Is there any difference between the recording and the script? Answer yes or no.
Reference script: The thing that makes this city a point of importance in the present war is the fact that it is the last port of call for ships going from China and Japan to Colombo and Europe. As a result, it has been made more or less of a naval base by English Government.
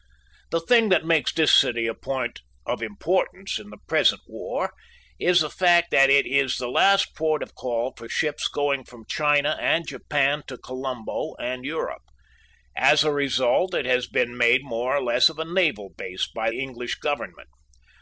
no